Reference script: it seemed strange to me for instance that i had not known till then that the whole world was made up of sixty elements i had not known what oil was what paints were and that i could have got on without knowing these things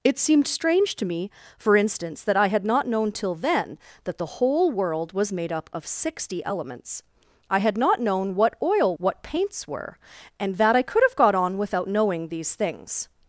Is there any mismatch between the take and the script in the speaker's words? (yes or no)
yes